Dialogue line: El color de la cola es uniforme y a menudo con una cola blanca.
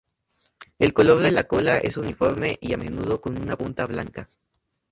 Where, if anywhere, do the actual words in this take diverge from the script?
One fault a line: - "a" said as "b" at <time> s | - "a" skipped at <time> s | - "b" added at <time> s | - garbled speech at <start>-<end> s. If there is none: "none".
- "cola" said as "punta" at 3.6 s